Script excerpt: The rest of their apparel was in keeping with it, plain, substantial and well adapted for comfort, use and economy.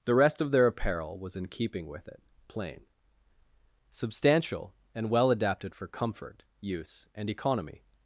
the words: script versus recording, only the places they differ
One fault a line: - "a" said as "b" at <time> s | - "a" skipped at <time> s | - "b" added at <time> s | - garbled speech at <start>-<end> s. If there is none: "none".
none